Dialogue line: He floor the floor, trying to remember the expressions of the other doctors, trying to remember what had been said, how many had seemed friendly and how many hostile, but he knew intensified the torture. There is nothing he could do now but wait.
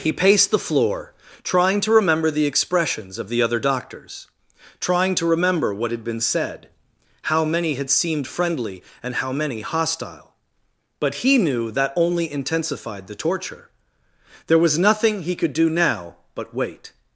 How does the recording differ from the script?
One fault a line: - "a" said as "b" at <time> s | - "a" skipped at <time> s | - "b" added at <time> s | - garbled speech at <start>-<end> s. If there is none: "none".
- "floor" said as "paced" at 0.1 s
- "that only" added at 11.7 s
- "is" said as "was" at 14.6 s